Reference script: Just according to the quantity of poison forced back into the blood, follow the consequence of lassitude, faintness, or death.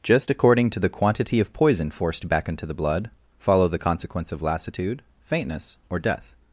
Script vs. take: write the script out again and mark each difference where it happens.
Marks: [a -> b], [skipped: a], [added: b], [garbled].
Just according to the quantity of poison forced back into the blood, follow the consequence of lassitude, faintness, or death.